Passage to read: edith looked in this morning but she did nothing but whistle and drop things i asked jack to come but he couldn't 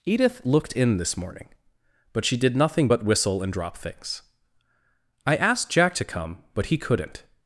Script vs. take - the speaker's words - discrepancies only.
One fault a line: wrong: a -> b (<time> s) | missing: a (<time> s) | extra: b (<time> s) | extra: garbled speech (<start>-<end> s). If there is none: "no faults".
no faults